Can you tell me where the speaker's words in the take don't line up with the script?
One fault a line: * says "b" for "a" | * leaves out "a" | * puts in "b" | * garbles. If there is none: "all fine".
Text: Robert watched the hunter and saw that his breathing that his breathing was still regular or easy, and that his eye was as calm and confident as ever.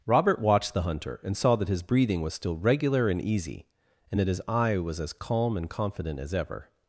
* leaves out "that his breathing"
* says "and" for "or"